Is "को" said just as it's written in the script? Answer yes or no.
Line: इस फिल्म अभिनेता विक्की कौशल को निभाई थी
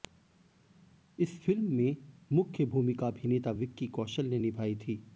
no